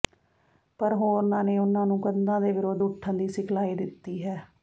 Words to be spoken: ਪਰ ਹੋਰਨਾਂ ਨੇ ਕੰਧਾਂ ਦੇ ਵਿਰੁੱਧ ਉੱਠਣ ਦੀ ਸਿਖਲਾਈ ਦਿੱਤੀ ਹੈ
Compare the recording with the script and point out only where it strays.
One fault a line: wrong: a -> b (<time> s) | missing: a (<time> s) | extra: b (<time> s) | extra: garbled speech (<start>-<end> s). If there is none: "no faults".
extra: ਉਨ੍ਹਾਂ ਨੂੰ (1.6 s)